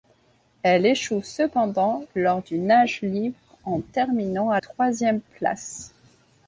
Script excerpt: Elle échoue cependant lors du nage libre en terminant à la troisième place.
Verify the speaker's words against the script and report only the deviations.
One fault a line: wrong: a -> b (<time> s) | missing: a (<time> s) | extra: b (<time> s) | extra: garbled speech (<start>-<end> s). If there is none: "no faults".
missing: la (4.6 s)